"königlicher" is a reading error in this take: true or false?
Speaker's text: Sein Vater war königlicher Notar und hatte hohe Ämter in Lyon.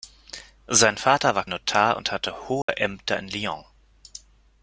true